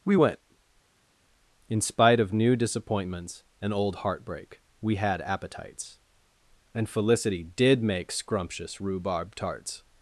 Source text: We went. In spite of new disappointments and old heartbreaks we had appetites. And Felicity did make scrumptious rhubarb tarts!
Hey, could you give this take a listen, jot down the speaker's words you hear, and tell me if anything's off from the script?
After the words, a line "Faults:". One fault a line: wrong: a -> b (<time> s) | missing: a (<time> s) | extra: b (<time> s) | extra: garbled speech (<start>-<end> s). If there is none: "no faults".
We went. In spite of new disappointments and old heartbreak we had appetites. And Felicity did make scrumptious rhubarb tarts!
Faults:
wrong: heartbreaks -> heartbreak (4.0 s)